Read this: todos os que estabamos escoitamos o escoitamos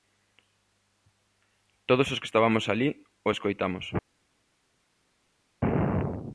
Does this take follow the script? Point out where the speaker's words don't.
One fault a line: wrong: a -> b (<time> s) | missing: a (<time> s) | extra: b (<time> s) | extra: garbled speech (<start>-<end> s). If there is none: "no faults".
wrong: escoitamos -> alí (2.7 s)